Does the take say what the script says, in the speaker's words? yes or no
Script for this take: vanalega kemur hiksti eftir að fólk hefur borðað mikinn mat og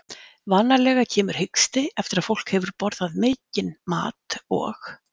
yes